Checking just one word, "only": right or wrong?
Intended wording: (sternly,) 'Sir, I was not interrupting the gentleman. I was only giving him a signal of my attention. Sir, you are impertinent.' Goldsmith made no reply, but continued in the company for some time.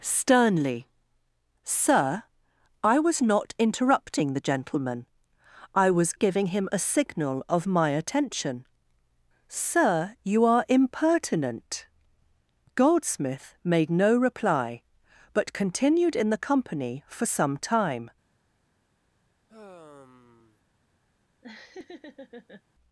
wrong